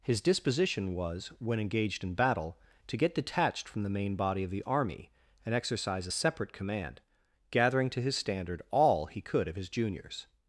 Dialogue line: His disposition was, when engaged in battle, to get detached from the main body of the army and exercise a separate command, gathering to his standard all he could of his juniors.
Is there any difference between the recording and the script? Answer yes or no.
no